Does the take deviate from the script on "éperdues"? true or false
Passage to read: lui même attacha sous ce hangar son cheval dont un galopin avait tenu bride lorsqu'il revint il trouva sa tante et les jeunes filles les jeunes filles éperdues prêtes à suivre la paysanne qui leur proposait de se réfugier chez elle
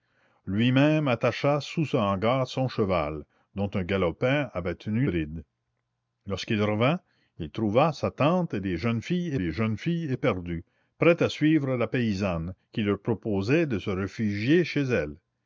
false